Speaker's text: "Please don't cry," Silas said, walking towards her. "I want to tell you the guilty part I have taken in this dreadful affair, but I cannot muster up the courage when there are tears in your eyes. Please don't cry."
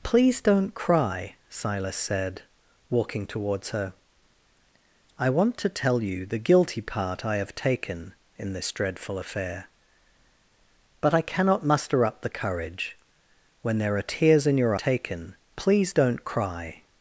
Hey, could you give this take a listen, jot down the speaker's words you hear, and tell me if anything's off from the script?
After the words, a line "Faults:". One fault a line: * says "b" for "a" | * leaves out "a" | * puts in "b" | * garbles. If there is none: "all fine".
"Please don't cry," Silas said, walking towards her. "I want to tell you the guilty part I have taken in this dreadful affair, but I cannot muster up the courage when there are tears in your taken. Please don't cry."
Faults:
* says "taken" for "eyes"